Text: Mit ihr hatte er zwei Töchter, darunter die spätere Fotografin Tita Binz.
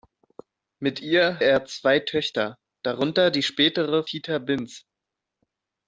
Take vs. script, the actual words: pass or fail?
fail